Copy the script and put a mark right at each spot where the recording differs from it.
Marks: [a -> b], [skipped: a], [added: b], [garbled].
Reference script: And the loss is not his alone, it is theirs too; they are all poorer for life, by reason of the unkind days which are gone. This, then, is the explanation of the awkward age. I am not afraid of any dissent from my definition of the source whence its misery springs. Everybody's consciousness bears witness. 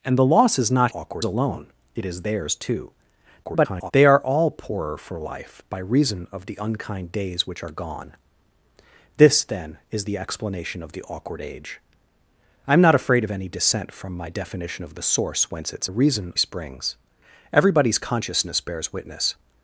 And the loss is not [his -> awkward] alone, it is theirs too; [garbled] they are all poorer for life, by reason of the unkind days which are gone. This, then, is the explanation of the awkward age. I am not afraid of any dissent from my definition of the source whence its [misery -> reason] springs. Everybody's consciousness bears witness.